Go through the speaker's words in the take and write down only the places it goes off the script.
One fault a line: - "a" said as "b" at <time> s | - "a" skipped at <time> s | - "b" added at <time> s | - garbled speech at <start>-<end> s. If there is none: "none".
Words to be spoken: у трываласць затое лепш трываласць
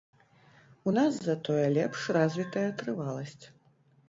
- "трываласць" said as "нас" at 1.0 s
- "развітая" added at 2.2 s